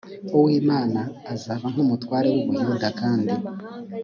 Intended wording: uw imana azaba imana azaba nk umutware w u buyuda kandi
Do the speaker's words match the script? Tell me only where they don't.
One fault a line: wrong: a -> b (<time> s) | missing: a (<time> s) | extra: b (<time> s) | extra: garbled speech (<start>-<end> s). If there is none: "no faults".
missing: imana azaba (1.6 s)